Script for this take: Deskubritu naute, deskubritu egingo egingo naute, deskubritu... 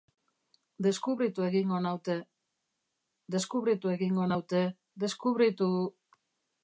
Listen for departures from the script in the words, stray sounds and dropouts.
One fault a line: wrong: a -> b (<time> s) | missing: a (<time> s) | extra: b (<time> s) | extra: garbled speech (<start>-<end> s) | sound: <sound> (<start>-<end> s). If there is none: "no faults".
extra: egingo (1.5 s)
missing: egingo (4.3 s)